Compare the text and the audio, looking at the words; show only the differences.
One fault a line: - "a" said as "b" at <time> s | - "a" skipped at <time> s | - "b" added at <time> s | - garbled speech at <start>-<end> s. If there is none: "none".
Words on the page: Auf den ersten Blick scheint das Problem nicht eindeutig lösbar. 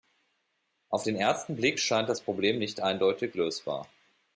none